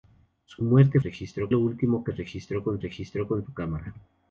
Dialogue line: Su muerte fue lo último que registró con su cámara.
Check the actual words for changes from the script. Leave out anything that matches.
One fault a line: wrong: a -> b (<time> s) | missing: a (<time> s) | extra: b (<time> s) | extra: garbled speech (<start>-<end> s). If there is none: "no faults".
wrong: fue -> registró (1.0 s)
extra: registró con (2.8 s)